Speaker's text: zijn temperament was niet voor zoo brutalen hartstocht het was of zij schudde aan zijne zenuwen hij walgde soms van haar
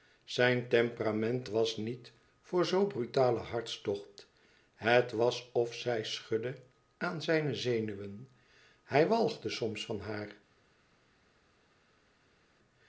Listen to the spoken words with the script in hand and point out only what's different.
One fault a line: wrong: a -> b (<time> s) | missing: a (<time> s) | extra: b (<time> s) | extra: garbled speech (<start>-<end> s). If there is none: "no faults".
no faults